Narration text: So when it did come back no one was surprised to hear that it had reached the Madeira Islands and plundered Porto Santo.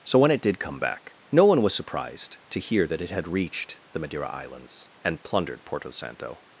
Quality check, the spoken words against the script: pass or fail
pass